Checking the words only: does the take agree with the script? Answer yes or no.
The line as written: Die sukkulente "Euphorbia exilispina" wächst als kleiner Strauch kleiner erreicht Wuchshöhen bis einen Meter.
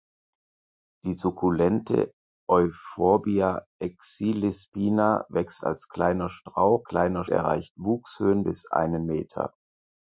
yes